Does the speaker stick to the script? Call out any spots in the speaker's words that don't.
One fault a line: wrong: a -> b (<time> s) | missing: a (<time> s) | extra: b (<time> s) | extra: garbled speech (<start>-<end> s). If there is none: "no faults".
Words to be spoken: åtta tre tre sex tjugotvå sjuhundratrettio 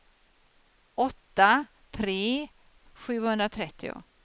missing: tre sex tjugotvå (2.5 s)